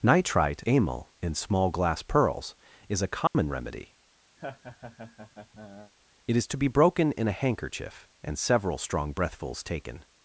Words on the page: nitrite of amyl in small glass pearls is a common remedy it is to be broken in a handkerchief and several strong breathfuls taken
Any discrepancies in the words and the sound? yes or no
yes